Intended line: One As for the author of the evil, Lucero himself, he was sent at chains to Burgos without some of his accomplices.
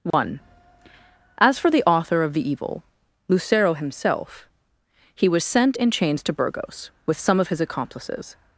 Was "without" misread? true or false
true